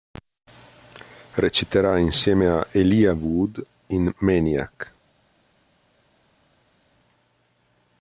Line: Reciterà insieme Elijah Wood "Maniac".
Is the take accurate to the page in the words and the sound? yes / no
no